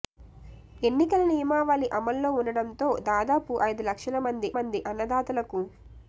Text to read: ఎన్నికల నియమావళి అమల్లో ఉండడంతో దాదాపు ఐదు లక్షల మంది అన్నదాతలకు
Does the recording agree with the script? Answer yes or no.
no